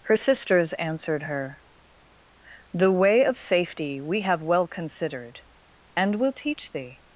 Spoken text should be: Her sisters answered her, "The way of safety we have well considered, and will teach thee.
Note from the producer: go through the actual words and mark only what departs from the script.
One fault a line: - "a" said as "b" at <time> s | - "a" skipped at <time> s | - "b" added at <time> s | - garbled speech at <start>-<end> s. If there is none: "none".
none